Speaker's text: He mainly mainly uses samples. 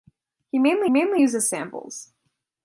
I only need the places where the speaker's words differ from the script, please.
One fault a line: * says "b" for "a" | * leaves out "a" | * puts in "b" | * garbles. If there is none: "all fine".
all fine